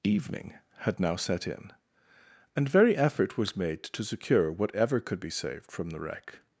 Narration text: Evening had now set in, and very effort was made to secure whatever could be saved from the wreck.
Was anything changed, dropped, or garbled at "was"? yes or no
no